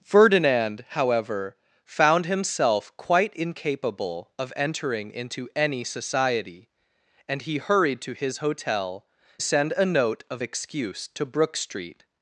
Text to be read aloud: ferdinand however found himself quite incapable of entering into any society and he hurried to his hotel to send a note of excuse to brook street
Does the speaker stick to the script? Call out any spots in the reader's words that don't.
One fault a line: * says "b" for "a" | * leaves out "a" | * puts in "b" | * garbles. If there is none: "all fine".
* leaves out "to"